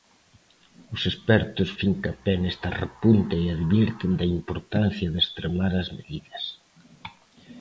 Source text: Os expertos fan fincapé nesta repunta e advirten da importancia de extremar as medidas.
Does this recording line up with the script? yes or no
no